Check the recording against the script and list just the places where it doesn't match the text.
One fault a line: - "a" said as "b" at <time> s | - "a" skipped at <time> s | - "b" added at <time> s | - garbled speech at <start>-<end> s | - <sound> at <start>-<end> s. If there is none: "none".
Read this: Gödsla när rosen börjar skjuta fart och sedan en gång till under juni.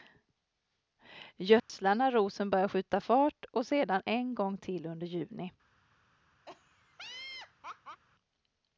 - dropout at 1.6-1.7 s
- laugh at 6.5-8.0 s